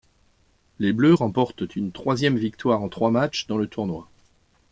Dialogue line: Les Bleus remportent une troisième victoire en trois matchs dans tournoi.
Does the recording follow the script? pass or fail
fail